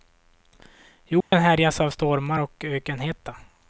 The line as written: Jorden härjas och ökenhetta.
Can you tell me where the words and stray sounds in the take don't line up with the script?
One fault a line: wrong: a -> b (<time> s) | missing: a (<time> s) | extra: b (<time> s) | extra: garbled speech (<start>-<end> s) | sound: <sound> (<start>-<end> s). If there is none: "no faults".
sound: dropout (1.2-1.3 s)
extra: av stormar (1.8 s)